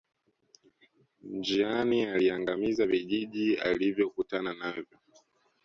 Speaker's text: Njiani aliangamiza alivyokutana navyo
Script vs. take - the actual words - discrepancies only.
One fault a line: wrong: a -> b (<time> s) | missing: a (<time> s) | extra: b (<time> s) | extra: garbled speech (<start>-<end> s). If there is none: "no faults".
extra: vijiji (2.9 s)